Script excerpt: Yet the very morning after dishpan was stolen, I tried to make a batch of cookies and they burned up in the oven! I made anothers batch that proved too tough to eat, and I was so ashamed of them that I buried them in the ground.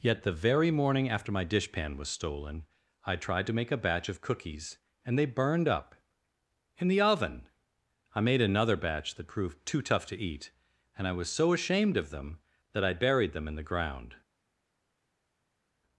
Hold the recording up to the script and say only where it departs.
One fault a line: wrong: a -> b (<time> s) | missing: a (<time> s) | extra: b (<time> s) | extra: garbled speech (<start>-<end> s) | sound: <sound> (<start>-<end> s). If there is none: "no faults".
extra: my (1.3 s)
wrong: anothers -> another (8.4 s)